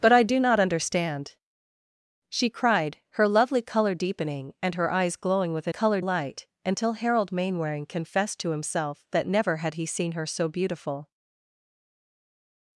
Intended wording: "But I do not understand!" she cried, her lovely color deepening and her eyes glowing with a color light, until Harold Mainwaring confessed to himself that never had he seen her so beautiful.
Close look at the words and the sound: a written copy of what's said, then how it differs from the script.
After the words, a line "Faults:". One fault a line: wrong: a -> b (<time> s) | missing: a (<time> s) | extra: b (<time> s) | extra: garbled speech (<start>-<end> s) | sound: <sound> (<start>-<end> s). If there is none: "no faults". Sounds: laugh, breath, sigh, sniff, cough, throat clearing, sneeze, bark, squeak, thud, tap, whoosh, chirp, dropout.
"But I do not understand!" she cried, her lovely color deepening and her eyes glowing with a color light, until Harold Mainwaring confessed to himself that never had he seen her so beautiful.
Faults:
no faults